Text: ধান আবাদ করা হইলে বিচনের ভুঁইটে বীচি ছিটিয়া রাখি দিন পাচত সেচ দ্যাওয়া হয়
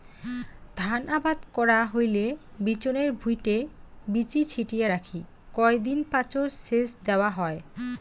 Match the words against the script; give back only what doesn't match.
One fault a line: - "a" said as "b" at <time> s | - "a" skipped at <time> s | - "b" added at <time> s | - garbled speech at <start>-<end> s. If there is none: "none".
- "কয়" added at 5.5 s